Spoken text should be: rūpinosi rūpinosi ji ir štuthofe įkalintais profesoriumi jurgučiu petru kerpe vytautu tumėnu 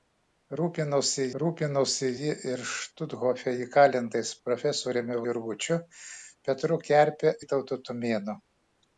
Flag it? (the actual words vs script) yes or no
no